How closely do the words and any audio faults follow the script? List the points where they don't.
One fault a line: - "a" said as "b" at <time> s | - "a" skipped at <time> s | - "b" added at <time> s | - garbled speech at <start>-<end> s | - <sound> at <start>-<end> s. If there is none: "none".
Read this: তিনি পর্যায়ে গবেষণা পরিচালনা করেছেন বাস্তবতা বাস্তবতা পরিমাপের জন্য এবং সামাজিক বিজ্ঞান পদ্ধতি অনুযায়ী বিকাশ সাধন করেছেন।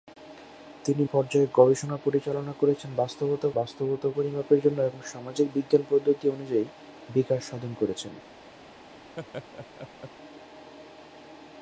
- laugh at 9.2-10.1 s